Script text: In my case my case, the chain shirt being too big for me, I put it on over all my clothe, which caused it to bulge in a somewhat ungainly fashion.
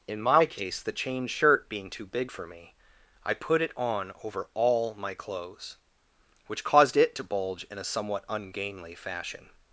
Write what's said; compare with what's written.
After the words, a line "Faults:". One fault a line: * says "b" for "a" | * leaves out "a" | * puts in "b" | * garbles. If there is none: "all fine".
In my case, the chain shirt being too big for me, I put it on over all my clothes, which caused it to bulge in a somewhat ungainly fashion.
Faults:
* leaves out "my case"
* says "clothes" for "clothe"